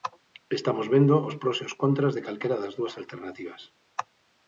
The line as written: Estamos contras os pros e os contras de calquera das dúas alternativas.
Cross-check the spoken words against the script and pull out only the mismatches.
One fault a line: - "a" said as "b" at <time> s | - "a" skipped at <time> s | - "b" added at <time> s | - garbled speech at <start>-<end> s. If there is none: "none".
- "contras" said as "vendo" at 0.9 s